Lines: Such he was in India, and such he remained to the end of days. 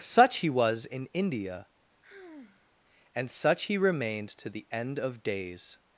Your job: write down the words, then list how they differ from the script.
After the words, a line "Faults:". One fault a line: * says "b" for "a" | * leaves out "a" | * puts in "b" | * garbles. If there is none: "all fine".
Such he was in India, and such he remained to the end of days.
Faults:
all fine